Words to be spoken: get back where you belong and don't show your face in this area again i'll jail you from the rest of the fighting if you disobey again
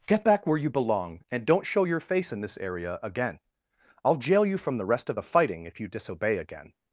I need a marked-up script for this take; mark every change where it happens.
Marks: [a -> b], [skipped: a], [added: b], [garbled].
get back where you belong and don't show your face in this area again i'll jail you from the rest of the fighting if you disobey again